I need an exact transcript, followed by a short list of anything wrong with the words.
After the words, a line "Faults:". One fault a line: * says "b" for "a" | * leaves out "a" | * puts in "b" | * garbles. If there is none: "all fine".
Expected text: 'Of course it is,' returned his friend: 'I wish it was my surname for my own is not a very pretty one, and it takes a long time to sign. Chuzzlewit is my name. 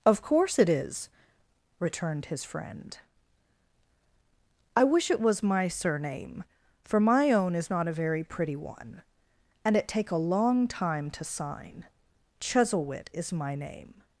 'Of course it is,' returned his friend: 'I wish it was my surname for my own is not a very pretty one, and it take a long time to sign. Chuzzlewit is my name.
Faults:
* says "take" for "takes"